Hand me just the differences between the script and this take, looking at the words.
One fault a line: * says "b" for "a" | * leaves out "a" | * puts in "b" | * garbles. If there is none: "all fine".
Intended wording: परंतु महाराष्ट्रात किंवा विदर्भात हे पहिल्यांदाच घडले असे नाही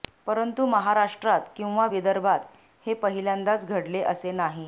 all fine